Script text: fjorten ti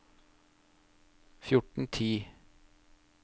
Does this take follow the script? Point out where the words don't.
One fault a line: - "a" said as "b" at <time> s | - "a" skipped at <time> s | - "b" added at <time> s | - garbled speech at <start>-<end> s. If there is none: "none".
none